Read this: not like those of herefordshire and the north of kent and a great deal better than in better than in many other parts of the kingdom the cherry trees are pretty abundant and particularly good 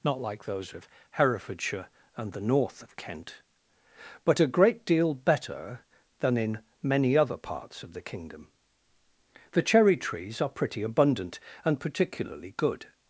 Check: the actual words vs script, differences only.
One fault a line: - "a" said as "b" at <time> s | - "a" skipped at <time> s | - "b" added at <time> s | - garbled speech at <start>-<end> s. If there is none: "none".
- "and" said as "but" at 4.2 s
- "better than in" skipped at 6.6 s